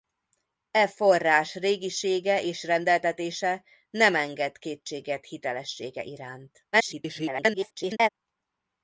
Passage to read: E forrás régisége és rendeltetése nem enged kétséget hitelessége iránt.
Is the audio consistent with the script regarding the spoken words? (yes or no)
no